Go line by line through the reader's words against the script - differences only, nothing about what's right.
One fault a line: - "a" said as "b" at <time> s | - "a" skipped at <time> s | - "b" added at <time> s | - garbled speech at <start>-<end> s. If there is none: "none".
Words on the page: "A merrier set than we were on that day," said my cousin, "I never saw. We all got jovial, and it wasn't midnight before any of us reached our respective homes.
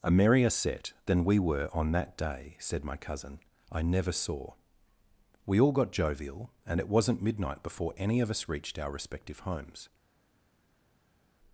none